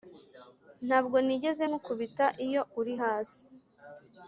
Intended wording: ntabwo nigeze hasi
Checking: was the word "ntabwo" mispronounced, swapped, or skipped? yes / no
no